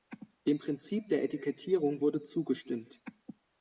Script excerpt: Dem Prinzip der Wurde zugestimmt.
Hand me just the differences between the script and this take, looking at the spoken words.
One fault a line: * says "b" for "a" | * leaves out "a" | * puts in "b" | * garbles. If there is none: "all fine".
* puts in "Etikettierung"